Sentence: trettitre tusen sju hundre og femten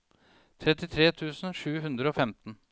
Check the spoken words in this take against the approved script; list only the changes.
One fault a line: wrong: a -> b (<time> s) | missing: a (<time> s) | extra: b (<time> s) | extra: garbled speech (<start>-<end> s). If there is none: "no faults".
no faults